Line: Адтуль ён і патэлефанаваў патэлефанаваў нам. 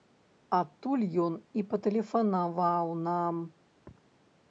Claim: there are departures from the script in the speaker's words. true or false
true